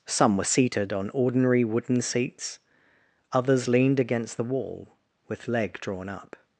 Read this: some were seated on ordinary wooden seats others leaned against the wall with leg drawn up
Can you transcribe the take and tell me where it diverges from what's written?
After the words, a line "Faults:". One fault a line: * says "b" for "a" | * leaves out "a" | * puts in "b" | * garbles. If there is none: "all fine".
some were seated on ordinary wooden seats others leaned against the wall with leg drawn up
Faults:
all fine